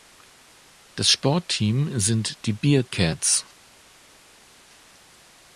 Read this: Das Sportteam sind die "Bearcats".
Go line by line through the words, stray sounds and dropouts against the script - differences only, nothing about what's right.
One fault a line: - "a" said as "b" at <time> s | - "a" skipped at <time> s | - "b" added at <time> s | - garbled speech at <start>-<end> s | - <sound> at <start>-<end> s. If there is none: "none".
none